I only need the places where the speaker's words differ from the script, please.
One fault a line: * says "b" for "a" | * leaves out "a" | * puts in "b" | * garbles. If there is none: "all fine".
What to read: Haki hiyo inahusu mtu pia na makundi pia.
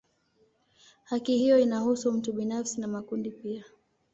* says "binafsi" for "pia"